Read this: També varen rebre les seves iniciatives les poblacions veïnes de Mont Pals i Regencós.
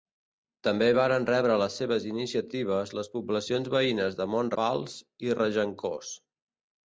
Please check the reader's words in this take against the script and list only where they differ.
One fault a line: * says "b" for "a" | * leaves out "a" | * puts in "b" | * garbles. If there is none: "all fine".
all fine